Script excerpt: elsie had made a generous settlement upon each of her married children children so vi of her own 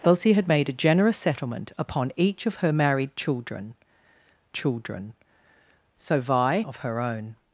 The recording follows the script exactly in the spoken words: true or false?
true